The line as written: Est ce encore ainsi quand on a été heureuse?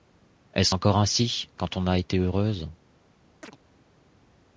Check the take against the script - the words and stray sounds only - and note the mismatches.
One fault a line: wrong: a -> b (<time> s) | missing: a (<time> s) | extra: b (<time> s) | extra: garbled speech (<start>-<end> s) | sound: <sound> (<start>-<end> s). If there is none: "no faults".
sound: chirp (3.4-3.6 s)